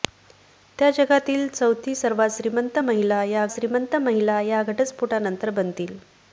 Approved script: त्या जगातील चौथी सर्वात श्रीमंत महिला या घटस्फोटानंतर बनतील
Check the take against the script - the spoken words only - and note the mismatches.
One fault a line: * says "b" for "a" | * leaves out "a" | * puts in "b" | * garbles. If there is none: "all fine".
* puts in "श्रीमंत महिला या"